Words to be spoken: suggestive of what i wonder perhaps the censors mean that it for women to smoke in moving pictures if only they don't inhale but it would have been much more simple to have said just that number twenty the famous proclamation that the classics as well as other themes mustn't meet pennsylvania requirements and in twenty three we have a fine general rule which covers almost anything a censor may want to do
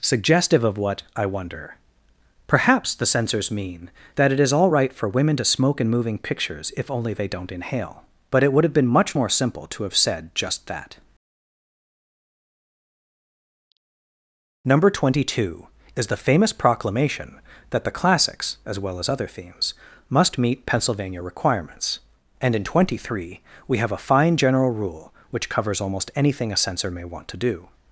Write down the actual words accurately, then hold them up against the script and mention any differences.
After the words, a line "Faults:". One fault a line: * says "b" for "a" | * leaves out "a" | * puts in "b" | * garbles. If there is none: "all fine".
suggestive of what i wonder perhaps the censors mean that it is all right for women to smoke in moving pictures if only they don't inhale but it would have been much more simple to have said just that number twenty two is the famous proclamation that the classics as well as other themes must meet pennsylvania requirements and in twenty three we have a fine general rule which covers almost anything a censor may want to do
Faults:
* puts in "is all right"
* puts in "two is"
* says "must" for "mustn't"